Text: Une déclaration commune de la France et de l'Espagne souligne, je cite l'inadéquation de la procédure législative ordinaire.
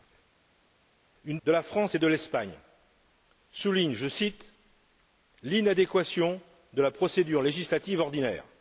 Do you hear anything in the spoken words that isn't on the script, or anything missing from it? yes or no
yes